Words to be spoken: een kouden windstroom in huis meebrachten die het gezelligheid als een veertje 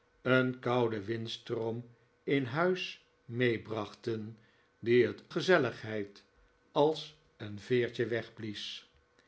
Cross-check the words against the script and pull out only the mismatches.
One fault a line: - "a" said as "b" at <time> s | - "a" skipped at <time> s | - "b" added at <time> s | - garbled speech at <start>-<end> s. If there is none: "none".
none